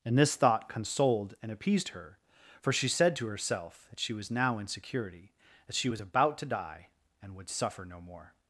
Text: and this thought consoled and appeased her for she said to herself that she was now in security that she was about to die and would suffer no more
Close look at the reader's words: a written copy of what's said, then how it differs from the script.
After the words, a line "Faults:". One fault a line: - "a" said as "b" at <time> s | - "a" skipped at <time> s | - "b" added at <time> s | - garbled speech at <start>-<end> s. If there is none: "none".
and this thought consoled and appeased her for she said to herself that she was now in security that she was about to die and would suffer no more
Faults:
none